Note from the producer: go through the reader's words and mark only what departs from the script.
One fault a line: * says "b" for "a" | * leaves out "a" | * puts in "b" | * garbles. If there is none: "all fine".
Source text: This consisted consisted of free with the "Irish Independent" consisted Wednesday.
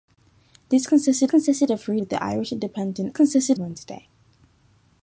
all fine